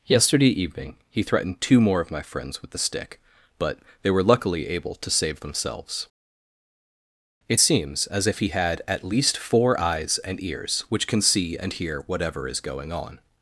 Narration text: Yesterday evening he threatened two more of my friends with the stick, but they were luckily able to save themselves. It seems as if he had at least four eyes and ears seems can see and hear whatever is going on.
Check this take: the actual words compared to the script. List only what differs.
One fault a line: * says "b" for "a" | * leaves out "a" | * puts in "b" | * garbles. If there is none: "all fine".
* says "which" for "seems"